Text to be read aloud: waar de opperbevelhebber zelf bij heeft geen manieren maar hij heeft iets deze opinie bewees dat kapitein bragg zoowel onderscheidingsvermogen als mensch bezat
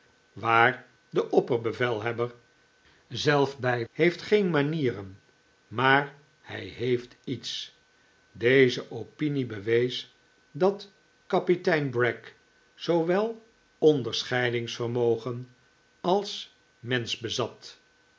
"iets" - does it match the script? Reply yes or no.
yes